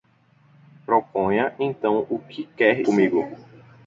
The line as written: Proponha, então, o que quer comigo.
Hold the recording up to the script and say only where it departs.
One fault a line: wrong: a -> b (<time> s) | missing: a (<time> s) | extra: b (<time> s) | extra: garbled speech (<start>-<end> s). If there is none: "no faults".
no faults